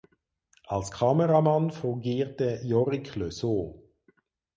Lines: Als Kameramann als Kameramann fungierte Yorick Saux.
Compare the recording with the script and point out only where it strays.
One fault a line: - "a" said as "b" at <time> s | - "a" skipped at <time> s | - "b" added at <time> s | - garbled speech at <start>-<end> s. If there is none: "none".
- "als Kameramann" skipped at 1.7 s
- "Le" added at 3.2 s